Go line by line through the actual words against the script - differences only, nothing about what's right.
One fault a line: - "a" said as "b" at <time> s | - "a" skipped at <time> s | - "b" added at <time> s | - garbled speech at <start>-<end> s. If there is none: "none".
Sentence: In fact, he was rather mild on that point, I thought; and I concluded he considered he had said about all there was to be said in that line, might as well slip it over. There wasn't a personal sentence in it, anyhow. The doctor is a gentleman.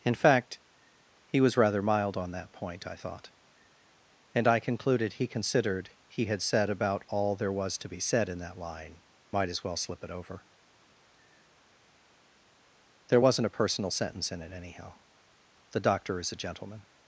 none